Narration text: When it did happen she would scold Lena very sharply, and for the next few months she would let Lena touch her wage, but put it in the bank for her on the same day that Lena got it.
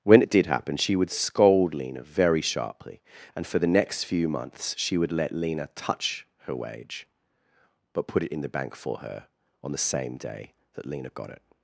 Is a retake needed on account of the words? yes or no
no